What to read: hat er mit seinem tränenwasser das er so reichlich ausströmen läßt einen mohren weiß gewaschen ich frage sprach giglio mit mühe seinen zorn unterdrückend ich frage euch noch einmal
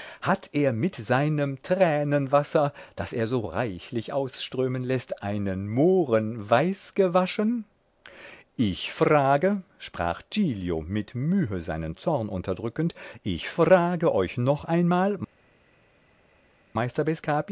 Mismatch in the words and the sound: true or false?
false